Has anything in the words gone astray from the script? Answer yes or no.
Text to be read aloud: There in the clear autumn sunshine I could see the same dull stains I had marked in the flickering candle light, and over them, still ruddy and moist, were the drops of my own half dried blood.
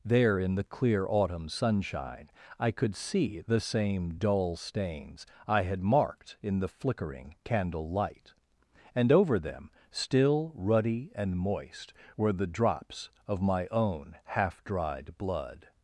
no